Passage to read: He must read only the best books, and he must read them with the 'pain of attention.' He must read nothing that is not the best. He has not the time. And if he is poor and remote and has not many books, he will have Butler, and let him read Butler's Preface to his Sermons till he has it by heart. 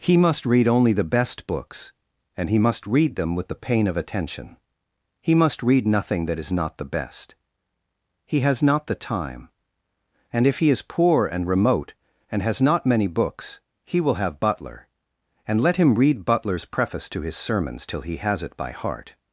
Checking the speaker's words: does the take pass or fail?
pass